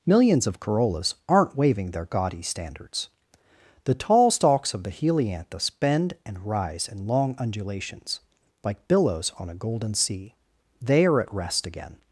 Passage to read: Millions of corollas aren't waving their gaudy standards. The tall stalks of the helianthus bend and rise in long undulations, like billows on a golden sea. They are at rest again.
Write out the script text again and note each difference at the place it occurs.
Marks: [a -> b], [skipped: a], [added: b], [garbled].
Millions of corollas aren't waving their gaudy standards. The tall stalks of the helianthus bend and rise in long undulations, like billows on a golden sea. They are at rest again.